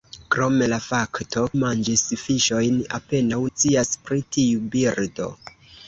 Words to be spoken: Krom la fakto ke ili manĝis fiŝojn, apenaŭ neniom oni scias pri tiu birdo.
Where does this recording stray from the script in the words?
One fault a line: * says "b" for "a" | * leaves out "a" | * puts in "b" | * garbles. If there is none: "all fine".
* leaves out "ke ili"
* leaves out "neniom oni"